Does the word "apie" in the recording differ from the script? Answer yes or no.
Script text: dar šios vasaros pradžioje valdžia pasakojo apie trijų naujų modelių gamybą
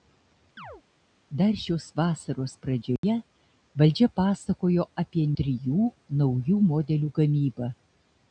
no